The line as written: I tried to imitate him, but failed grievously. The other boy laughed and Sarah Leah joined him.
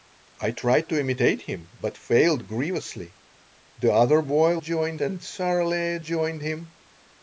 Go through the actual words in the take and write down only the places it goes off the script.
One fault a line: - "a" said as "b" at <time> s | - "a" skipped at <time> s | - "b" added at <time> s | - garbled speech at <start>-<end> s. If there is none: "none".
- "laughed" said as "joined" at 4.6 s